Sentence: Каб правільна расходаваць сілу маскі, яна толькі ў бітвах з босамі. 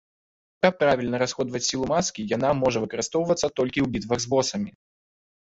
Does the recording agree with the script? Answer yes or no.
no